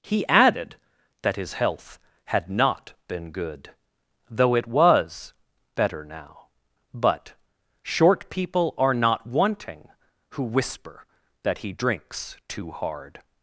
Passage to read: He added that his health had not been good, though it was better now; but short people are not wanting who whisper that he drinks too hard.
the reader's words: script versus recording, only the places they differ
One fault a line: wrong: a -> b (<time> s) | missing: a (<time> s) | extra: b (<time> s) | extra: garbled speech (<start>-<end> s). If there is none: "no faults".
no faults